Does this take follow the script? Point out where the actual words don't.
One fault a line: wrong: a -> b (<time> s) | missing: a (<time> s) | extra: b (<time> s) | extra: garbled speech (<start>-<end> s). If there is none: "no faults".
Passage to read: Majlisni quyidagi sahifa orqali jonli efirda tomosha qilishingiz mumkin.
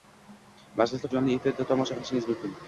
missing: quyidagi sahifa orqali (1.1 s)